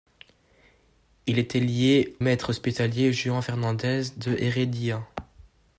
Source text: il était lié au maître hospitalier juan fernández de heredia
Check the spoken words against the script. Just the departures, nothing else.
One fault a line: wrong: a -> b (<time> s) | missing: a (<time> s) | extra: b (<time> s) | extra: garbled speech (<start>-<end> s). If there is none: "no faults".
missing: au (2.1 s)